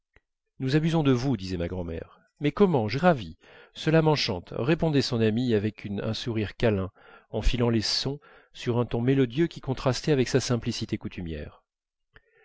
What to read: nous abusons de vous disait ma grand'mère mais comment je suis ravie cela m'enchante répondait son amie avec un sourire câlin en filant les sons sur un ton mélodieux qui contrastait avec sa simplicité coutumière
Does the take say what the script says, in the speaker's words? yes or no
no